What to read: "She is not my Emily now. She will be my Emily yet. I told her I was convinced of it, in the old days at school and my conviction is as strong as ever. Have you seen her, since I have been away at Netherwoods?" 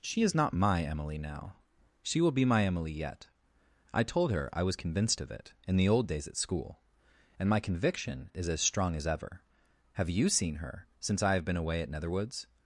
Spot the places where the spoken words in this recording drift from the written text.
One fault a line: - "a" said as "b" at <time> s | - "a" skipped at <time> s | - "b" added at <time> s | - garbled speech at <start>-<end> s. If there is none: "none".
none